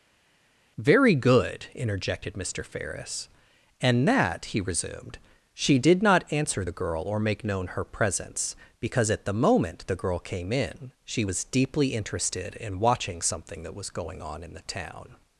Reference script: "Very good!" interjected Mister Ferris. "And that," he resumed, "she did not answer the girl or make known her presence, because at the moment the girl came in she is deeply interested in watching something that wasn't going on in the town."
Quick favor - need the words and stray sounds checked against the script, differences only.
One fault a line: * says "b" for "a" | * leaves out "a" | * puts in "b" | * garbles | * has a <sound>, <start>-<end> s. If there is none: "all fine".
* says "was" for "is"
* says "was" for "wasn't"